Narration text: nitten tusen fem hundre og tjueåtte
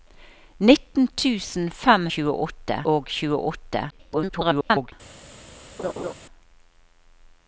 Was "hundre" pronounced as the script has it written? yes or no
no